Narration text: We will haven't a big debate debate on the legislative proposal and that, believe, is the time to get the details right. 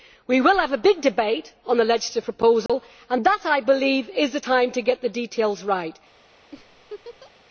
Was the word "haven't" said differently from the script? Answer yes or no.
yes